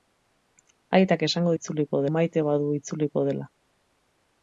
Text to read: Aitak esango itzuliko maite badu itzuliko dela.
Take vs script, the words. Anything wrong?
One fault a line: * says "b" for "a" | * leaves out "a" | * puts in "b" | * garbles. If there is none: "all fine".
all fine